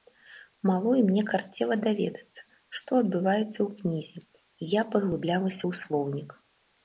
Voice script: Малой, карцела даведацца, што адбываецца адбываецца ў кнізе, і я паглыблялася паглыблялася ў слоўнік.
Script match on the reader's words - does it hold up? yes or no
no